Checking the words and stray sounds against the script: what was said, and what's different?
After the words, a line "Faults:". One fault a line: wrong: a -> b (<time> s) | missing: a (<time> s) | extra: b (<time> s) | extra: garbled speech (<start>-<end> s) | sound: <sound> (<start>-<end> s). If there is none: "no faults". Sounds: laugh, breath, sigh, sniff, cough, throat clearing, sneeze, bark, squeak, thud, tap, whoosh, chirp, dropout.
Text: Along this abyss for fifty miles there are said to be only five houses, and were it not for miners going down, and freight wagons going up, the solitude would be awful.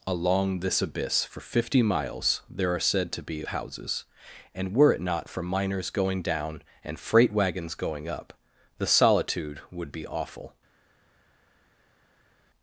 Along this abyss for fifty miles there are said to be houses, and were it not for miners going down, and freight wagons going up, the solitude would be awful.
Faults:
missing: only five (3.5 s)